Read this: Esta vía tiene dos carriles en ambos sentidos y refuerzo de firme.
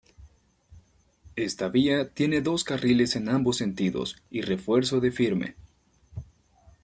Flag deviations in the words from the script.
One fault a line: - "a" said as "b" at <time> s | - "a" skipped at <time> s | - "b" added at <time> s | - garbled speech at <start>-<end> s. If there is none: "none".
none